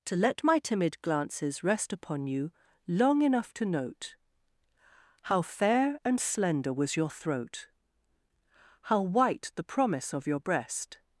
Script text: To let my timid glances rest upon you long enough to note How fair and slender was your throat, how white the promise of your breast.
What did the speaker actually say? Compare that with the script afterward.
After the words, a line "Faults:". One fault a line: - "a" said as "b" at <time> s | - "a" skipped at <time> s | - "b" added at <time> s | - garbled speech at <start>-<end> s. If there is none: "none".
To let my timid glances rest upon you long enough to note How fair and slender was your throat, how white the promise of your breast.
Faults:
none